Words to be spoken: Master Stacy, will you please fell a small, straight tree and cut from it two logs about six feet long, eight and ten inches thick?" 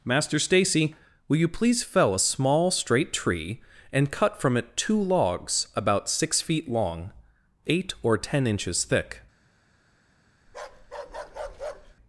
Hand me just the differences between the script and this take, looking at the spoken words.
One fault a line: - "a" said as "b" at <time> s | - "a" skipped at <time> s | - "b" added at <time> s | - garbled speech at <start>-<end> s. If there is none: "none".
- "and" said as "or" at 8.0 s